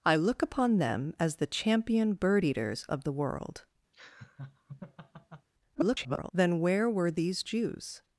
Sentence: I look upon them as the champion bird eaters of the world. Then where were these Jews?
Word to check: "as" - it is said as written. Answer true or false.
true